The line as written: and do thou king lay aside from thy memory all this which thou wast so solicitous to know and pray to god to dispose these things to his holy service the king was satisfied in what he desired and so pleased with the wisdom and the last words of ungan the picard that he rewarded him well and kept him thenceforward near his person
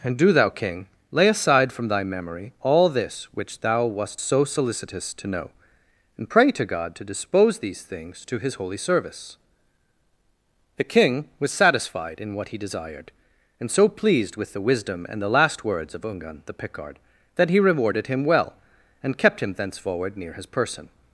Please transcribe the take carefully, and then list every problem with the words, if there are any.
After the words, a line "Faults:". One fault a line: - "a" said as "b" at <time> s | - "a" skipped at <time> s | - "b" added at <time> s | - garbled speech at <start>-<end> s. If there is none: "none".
and do thou king lay aside from thy memory all this which thou wast so solicitous to know and pray to god to dispose these things to his holy service the king was satisfied in what he desired and so pleased with the wisdom and the last words of ungan the picard that he rewarded him well and kept him thenceforward near his person
Faults:
none